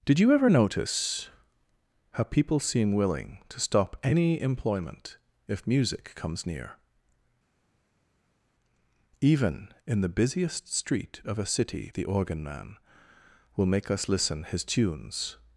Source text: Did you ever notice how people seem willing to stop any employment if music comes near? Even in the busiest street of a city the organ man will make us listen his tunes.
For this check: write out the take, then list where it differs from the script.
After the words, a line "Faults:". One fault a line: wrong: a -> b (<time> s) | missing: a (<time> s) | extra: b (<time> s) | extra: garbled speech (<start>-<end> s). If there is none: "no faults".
Did you ever notice how people seem willing to stop any employment if music comes near? Even in the busiest street of a city the organ man will make us listen his tunes.
Faults:
no faults